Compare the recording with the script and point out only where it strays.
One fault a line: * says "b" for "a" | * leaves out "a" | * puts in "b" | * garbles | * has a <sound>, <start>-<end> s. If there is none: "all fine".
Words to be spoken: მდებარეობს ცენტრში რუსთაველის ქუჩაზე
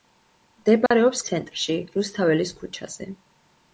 * has a dropout, 0.9-0.9 s